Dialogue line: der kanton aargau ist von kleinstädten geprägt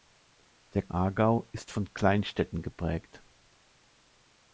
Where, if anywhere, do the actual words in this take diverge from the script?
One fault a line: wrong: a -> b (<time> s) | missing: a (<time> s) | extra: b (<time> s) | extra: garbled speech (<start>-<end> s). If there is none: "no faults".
missing: kanton (0.8 s)